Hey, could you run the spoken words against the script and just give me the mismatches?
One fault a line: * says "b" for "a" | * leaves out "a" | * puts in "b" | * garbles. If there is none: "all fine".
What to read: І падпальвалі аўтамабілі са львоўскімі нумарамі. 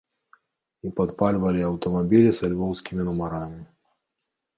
all fine